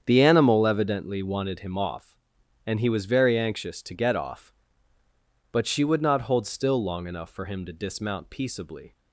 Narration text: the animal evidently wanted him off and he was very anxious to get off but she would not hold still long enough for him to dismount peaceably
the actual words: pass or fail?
pass